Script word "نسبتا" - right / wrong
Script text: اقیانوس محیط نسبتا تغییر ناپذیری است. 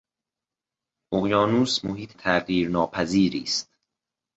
wrong